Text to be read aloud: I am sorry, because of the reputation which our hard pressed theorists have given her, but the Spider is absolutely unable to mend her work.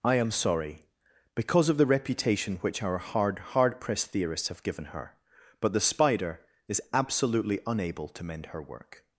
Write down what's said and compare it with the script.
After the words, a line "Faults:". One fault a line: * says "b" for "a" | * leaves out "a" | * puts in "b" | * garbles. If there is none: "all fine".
I am sorry, because of the reputation which our hard hard pressed theorists have given her, but the Spider is absolutely unable to mend her work.
Faults:
* puts in "hard"